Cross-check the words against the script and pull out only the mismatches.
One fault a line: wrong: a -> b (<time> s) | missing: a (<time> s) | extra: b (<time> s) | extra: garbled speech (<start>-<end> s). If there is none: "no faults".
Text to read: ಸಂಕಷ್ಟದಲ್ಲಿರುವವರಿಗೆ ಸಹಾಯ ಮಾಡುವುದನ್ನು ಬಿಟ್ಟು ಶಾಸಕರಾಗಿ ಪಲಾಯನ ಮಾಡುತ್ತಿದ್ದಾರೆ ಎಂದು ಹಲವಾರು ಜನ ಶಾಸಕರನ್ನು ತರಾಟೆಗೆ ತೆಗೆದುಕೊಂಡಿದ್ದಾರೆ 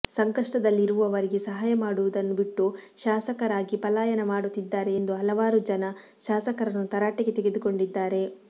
no faults